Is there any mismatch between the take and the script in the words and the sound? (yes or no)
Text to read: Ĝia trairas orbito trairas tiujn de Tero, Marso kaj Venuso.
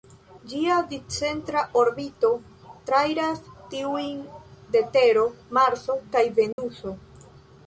yes